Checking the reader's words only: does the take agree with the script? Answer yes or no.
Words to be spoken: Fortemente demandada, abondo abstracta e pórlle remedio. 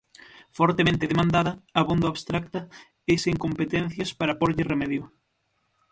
no